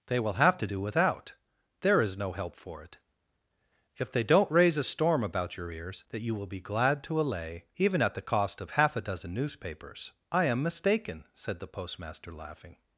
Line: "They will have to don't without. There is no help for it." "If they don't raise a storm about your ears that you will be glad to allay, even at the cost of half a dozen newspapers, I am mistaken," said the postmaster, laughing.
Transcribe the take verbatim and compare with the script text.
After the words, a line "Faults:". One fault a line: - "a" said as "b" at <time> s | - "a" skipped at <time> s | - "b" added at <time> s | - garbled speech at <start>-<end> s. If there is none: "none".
"They will have to do without. There is no help for it." "If they don't raise a storm about your ears that you will be glad to allay, even at the cost of half a dozen newspapers, I am mistaken," said the postmaster, laughing.
Faults:
- "don't" said as "do" at 0.6 s